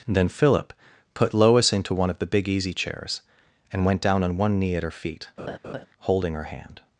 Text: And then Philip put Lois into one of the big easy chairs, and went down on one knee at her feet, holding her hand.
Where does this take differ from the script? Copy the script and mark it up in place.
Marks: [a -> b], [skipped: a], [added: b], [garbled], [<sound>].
[skipped: And] then Philip put Lois into one of the big easy chairs, and went down on one knee at her feet, [laugh] holding her hand.